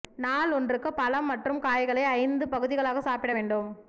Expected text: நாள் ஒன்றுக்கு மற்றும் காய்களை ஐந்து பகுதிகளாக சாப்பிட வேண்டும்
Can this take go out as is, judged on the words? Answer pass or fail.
fail